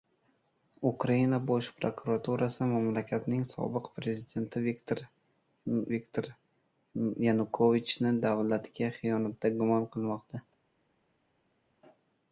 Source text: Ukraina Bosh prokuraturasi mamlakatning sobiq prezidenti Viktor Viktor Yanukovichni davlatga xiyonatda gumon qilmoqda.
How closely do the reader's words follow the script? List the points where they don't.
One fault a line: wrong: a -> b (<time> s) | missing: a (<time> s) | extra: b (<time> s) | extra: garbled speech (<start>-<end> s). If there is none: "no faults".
no faults